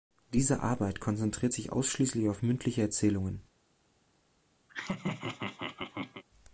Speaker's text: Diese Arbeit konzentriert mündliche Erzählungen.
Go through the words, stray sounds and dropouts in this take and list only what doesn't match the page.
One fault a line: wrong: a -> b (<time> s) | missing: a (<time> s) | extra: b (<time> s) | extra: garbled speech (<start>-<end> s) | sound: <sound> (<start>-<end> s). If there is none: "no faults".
extra: sich ausschließlich auf (1.5 s)
sound: laugh (4.7-6.2 s)